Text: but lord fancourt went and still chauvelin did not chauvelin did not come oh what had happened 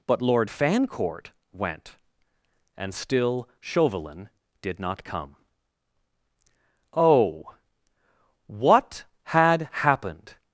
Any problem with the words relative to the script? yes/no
yes